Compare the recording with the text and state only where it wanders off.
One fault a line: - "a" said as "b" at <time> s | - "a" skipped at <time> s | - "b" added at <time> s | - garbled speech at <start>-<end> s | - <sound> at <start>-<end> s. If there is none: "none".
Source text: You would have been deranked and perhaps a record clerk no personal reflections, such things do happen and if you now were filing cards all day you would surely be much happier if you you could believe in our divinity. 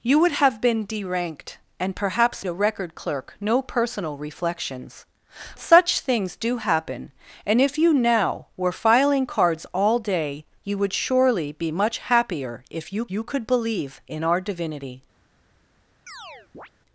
- chirp at 16.1-16.7 s